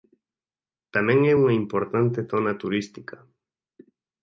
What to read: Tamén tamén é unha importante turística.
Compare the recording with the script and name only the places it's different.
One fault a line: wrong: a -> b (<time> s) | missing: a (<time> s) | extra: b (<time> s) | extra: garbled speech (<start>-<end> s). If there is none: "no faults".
missing: tamén (1.2 s)
extra: zona (2.3 s)